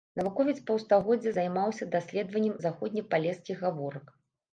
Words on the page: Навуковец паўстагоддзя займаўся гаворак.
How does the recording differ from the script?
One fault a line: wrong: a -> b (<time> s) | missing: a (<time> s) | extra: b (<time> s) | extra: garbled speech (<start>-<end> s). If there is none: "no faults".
extra: даследаваннем заходнепалескіх (1.9 s)